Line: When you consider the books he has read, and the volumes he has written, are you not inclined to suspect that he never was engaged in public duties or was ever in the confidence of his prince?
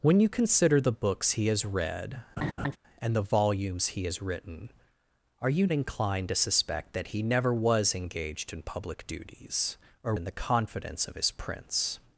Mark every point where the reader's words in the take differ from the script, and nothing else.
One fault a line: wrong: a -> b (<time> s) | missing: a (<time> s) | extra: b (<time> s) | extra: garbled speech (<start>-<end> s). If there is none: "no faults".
missing: not (5.7 s)
missing: was ever (10.1 s)